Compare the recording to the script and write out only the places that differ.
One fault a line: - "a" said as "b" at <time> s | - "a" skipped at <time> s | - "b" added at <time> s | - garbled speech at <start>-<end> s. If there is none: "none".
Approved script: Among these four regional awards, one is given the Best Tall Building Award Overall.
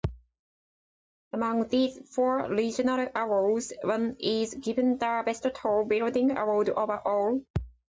none